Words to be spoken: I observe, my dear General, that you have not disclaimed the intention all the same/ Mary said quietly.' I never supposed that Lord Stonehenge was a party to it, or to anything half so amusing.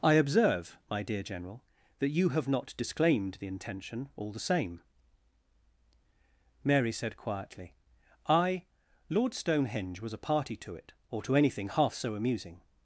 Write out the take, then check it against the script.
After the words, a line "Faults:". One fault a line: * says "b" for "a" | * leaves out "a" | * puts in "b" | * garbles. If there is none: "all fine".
I observe, my dear General, that you have not disclaimed the intention all the same/ Mary said quietly.' I Lord Stonehenge was a party to it, or to anything half so amusing.
Faults:
* leaves out "never supposed that"